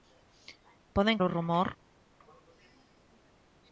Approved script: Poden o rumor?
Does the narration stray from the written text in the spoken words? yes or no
no